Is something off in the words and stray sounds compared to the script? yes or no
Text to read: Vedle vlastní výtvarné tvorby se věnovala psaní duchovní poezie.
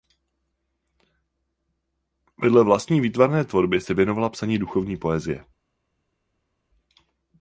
no